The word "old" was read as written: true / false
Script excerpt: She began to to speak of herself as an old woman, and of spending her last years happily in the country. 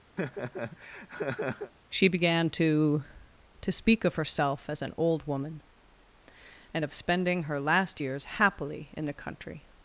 true